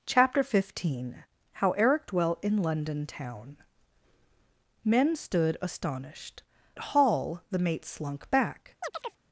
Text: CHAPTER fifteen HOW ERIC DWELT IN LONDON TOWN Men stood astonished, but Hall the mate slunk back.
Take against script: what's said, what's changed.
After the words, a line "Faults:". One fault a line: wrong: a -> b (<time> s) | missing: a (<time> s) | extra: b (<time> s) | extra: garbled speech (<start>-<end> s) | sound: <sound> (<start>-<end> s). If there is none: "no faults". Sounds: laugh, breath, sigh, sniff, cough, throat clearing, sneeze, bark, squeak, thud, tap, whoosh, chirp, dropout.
CHAPTER fifteen HOW ERIC DWELT IN LONDON TOWN Men stood astonished, Hall the mate slunk back.
Faults:
missing: but (6.4 s)
sound: chirp (8.8-9.2 s)